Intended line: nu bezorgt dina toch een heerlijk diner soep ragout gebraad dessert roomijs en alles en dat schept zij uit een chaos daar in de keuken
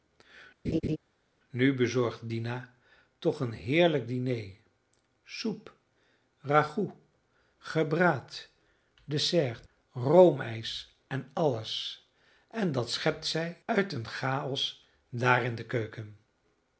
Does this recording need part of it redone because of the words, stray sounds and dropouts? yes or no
yes